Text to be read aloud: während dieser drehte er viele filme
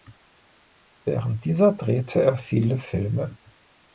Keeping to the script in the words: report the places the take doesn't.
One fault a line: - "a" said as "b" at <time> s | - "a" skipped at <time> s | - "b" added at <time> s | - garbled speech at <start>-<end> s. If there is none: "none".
none